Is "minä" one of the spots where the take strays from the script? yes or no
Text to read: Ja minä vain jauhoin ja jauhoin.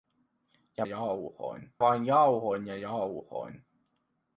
yes